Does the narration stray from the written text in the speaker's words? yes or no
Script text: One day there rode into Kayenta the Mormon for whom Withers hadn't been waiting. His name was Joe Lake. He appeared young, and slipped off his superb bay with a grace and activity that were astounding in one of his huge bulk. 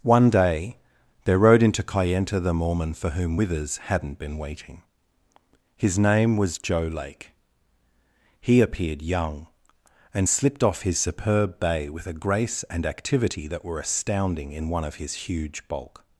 no